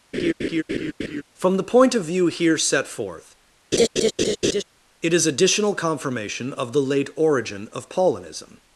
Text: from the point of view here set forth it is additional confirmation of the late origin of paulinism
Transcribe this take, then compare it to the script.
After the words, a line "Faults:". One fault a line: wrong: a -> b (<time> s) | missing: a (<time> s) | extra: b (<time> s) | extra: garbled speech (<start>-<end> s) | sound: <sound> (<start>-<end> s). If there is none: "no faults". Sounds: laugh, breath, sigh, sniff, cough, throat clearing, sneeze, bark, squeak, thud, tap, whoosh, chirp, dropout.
from the point of view here set forth it is additional confirmation of the late origin of paulinism
Faults:
sound: laugh (0.1-1.2 s)
sound: laugh (3.7-4.6 s)